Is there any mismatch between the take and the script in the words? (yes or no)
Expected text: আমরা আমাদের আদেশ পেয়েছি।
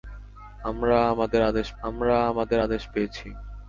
yes